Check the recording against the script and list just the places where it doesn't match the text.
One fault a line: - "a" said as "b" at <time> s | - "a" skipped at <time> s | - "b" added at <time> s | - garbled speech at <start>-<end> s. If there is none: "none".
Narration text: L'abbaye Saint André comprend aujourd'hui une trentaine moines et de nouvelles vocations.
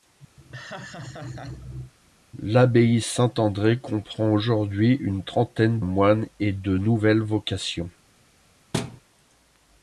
none